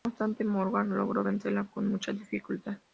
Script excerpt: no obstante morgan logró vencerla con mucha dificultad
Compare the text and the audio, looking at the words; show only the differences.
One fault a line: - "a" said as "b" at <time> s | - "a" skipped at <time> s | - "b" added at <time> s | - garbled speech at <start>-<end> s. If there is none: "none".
none